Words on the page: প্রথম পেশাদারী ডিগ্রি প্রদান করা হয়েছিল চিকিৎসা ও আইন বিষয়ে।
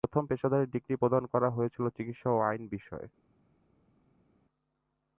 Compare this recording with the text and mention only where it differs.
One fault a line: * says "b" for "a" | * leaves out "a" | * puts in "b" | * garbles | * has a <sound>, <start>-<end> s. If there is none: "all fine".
all fine